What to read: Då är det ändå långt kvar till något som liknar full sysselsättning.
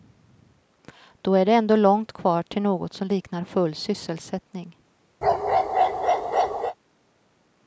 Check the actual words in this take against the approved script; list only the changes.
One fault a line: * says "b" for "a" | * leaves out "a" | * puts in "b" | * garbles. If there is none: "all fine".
all fine